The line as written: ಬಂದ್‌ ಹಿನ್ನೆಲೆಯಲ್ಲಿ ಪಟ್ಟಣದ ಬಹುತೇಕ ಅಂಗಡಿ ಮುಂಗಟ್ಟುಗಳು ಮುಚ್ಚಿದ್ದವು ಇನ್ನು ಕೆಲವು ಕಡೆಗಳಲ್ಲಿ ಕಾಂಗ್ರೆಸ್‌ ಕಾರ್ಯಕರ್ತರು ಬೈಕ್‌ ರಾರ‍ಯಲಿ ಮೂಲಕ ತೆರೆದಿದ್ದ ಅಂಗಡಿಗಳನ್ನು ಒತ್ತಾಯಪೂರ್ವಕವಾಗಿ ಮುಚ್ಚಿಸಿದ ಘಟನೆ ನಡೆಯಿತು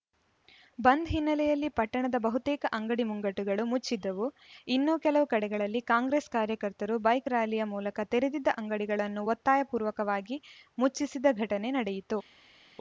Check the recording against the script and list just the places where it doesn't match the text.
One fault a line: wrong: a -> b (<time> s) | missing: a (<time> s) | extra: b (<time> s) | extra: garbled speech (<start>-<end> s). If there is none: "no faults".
no faults